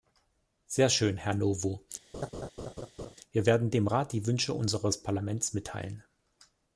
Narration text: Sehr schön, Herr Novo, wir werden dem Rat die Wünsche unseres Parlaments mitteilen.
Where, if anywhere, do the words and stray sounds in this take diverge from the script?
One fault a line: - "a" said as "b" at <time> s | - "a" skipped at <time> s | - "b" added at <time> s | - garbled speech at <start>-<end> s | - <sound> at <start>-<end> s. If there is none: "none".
- laugh at 2.1-3.1 s